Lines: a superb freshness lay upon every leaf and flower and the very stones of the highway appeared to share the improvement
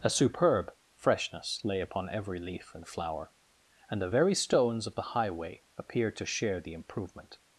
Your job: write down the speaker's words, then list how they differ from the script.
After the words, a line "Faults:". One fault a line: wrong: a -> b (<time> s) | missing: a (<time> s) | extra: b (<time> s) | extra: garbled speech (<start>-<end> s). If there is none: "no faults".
a superb freshness lay upon every leaf and flower and the very stones of the highway appeared to share the improvement
Faults:
no faults